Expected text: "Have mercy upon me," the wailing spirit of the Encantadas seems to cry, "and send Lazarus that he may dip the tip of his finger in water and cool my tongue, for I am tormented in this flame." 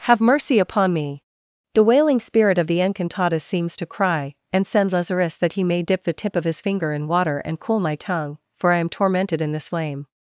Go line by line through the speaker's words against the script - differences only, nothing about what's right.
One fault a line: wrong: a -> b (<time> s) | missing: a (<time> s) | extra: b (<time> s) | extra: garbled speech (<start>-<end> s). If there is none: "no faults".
no faults